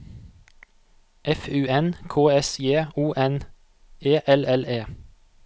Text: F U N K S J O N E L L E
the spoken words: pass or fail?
pass